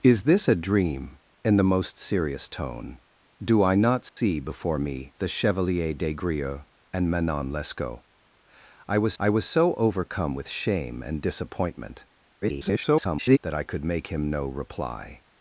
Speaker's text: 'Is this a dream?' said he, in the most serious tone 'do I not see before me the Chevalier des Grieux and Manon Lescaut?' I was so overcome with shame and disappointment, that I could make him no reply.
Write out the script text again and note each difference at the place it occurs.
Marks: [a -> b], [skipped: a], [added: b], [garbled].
'Is this a dream?' [skipped: said he,] in the most serious tone 'do I not see before me the Chevalier des Grieux and Manon Lescaut?' I was [added: I was] so overcome with shame and disappointment, [garbled] that I could make him no reply.